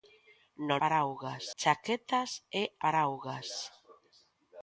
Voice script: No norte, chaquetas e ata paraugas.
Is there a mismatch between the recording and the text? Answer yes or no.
yes